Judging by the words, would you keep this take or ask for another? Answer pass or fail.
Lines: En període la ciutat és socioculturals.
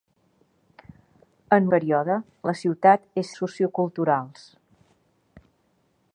pass